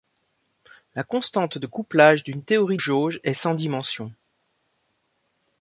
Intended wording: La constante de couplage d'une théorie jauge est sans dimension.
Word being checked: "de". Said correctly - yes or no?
yes